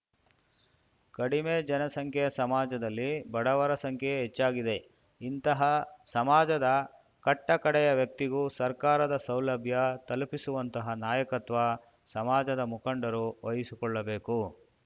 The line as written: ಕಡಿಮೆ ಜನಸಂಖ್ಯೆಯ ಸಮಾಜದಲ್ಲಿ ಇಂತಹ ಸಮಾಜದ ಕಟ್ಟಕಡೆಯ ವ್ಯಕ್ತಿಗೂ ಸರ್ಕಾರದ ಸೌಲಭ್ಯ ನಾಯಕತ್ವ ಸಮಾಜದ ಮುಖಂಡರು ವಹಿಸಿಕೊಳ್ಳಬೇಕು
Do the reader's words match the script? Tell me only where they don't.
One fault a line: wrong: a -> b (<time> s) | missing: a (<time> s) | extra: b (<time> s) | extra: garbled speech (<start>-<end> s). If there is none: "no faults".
extra: ಬಡವರ ಸಂಖ್ಯೆಯೇ ಹೆಚ್ಚಾಗಿದೆ (3.3 s)
extra: ತಲುಪಿಸುವಂತಹ (10.1 s)